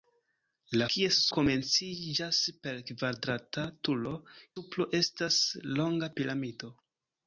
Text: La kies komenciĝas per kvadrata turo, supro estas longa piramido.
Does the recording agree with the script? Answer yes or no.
yes